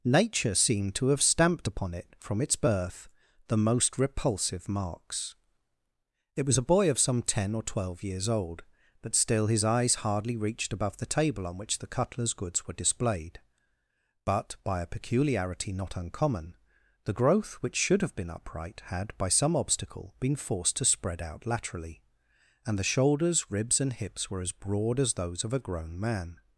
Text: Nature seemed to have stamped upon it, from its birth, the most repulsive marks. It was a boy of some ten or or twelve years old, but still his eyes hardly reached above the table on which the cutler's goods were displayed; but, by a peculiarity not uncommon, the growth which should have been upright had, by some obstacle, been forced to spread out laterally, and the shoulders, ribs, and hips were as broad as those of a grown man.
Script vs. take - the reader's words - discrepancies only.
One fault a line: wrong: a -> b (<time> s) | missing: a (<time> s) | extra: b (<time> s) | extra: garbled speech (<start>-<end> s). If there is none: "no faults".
missing: or (7.6 s)